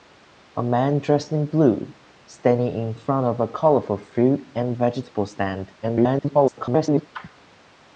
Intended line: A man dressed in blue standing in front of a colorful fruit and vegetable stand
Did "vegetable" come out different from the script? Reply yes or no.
no